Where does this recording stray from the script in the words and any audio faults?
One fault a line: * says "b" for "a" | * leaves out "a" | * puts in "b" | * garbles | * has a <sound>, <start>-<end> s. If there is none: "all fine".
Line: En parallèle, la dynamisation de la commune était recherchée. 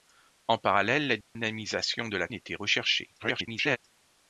* has a dropout, 1.2-1.4 s
* leaves out "commune"
* garbles